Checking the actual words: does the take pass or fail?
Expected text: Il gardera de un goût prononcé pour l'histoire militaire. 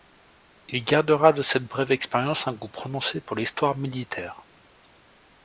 fail